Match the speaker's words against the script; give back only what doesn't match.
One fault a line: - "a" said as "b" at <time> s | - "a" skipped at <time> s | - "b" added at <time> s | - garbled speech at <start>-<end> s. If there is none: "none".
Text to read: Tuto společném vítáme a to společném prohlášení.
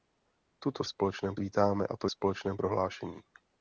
none